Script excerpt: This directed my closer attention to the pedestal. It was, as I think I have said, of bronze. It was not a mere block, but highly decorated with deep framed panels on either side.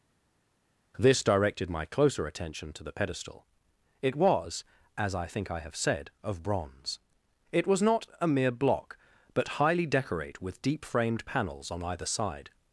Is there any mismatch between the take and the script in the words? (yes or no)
yes